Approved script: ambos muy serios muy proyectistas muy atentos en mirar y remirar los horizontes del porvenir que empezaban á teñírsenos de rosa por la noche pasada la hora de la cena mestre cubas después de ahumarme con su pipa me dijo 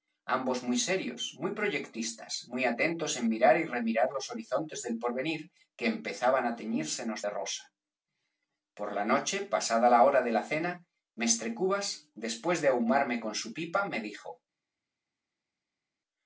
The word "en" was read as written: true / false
true